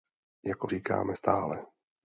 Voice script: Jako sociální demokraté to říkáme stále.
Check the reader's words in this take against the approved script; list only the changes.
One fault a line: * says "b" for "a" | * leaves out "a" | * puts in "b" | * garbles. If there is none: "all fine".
* leaves out "sociální demokraté to"